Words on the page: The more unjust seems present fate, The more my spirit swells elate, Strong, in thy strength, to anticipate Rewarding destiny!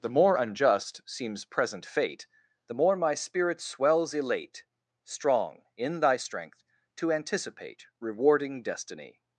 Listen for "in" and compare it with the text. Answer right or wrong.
right